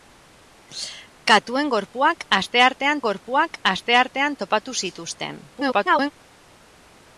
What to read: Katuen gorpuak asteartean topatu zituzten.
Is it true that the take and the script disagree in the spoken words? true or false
true